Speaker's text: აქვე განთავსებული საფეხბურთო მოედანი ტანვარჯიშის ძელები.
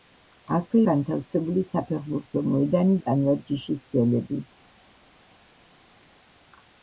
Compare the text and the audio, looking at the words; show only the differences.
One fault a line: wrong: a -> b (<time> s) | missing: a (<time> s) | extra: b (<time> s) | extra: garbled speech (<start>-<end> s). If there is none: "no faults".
no faults